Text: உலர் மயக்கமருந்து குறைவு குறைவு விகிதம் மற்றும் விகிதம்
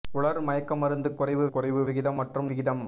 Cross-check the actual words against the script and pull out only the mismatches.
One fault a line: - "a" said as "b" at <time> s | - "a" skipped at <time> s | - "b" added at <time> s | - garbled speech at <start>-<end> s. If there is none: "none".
none